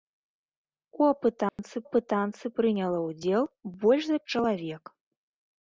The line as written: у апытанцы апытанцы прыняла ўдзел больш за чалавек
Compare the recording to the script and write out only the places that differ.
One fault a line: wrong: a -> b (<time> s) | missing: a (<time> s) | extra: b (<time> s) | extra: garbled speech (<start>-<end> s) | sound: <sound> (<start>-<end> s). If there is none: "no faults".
sound: dropout (1.5-1.6 s)